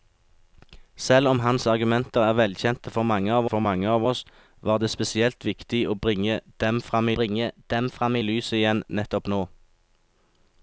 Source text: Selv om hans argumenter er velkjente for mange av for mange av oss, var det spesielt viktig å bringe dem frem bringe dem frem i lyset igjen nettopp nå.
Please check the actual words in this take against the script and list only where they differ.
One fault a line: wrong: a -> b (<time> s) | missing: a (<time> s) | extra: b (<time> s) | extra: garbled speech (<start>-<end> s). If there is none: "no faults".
no faults